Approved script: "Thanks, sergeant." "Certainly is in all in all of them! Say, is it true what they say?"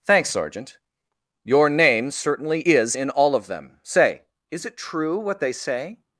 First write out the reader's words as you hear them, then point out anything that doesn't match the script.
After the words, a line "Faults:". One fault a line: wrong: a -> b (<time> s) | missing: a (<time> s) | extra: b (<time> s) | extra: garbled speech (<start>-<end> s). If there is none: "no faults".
"Thanks, sergeant." "Your name certainly is in all of them! Say, is it true what they say?"
Faults:
extra: Your name (1.4 s)
missing: in all (3.3 s)